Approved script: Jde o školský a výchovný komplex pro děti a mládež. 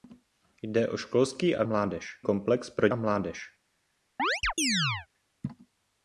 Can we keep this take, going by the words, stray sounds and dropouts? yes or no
no